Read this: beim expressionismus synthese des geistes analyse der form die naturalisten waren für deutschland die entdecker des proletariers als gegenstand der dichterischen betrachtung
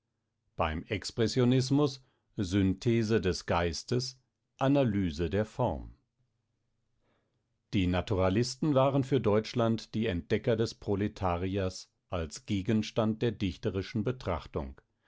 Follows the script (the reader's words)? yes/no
yes